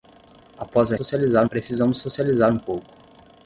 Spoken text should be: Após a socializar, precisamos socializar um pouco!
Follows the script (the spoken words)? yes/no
yes